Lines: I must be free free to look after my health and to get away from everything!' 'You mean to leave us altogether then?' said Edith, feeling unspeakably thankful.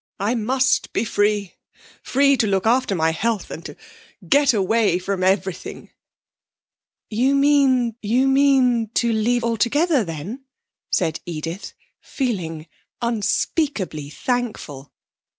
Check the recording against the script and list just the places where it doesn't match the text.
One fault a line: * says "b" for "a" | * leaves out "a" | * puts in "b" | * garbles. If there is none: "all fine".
* puts in "you mean"
* leaves out "us"